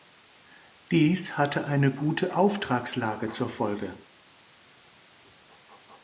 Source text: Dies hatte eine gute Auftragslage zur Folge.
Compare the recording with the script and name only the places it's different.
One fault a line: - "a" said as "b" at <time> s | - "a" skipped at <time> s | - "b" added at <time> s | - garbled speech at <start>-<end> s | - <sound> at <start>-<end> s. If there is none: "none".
none